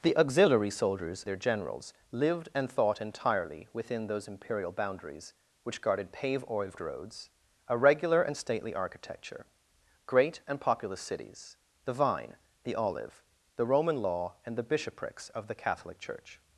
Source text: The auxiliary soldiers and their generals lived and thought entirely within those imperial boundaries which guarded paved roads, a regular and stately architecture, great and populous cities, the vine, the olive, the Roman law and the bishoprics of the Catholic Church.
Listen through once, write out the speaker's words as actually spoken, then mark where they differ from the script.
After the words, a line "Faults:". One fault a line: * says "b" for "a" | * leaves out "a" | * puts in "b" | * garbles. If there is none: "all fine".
The auxiliary soldiers their generals lived and thought entirely within those imperial boundaries which guarded paved roads, a regular and stately architecture, great and populous cities, the vine, the olive, the Roman law and the bishoprics of the Catholic Church.
Faults:
* leaves out "and"